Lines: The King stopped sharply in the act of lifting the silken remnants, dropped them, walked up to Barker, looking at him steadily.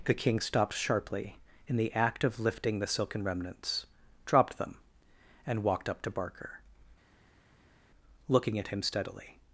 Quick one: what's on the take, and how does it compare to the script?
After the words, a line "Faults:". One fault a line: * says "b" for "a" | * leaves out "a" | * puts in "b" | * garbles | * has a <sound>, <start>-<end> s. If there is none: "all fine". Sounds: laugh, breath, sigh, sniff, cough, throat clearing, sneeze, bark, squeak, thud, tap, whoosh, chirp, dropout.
The King stopped sharply in the act of lifting the silken remnants, dropped them, and walked up to Barker, looking at him steadily.
Faults:
* puts in "and"